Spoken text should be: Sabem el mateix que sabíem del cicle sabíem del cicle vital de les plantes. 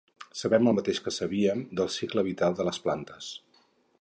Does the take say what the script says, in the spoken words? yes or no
no